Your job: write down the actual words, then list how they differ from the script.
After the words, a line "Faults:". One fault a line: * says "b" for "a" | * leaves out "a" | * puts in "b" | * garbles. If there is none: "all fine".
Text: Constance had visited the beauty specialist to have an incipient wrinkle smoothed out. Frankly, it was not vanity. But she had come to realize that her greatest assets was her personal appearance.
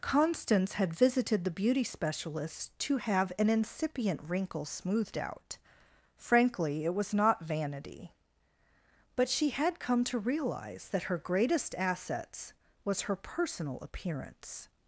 Constance had visited the beauty specialist to have an incipient wrinkle smoothed out. Frankly, it was not vanity. But she had come to realize that her greatest assets was her personal appearance.
Faults:
all fine